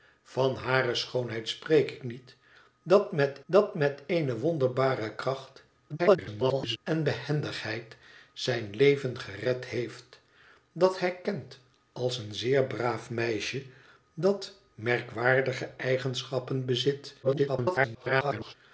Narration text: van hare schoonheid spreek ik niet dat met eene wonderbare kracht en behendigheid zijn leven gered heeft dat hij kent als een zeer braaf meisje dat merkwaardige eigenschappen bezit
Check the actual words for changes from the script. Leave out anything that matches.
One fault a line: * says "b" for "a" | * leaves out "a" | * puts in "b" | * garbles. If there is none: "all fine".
* puts in "dat met"
* garbles
* garbles